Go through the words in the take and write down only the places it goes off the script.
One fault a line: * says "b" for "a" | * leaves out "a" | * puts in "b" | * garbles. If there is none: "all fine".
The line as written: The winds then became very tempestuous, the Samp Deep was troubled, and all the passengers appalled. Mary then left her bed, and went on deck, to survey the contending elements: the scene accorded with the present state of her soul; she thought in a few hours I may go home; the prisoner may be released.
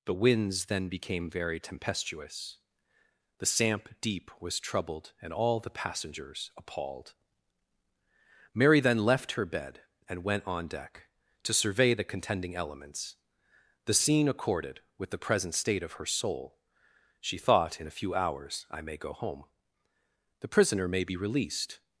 all fine